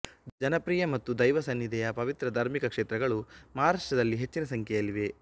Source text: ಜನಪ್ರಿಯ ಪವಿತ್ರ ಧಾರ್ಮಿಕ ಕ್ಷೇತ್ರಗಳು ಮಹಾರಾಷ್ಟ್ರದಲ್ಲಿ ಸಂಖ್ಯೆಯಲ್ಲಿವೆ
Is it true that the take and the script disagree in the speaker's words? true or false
true